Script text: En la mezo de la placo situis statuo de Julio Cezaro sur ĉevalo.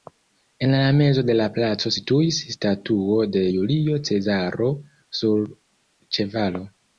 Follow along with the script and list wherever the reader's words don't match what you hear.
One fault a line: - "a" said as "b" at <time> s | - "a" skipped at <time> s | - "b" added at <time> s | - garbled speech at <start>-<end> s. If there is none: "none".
none